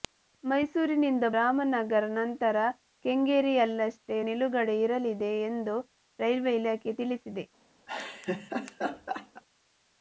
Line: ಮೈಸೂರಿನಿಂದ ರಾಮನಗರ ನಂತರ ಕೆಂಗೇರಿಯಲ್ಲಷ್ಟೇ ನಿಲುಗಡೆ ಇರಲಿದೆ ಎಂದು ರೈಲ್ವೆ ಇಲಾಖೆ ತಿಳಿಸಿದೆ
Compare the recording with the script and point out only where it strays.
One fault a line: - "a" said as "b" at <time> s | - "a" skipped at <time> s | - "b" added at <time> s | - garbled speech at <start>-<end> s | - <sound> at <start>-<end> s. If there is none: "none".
- laugh at 7.9-9.4 s